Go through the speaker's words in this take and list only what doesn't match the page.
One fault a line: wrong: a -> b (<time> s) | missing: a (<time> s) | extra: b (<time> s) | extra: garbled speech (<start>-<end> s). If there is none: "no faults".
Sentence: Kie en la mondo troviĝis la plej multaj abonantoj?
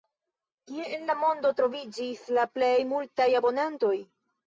no faults